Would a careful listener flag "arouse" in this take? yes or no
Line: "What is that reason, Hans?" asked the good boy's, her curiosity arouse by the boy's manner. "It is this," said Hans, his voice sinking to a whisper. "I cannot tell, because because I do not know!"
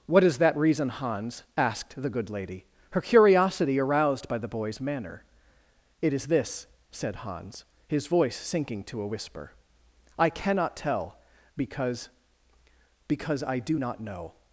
yes